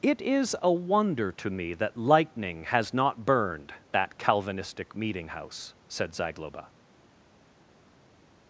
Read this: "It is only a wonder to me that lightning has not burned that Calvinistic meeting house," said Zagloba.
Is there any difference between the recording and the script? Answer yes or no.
yes